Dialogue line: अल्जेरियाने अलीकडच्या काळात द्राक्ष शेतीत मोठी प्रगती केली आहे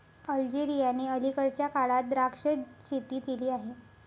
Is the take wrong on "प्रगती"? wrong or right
wrong